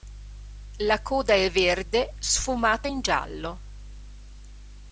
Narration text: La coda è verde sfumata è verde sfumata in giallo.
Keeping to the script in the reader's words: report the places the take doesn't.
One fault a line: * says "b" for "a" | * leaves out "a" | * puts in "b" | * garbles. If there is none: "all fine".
* leaves out "è verde sfumata"